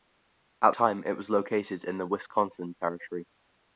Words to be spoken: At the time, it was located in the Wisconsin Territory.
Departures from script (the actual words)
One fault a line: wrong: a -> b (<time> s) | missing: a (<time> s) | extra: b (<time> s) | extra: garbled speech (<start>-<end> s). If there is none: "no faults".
missing: the (0.7 s)